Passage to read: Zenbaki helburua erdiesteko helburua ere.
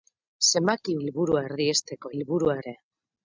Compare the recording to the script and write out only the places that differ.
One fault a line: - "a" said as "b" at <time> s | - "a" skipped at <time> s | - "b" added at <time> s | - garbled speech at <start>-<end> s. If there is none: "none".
none